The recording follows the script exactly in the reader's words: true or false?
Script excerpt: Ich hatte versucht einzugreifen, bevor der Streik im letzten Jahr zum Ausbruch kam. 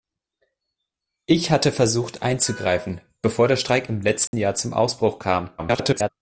false